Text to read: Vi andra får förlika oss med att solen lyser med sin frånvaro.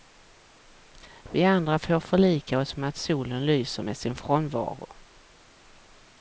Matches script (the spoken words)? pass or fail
pass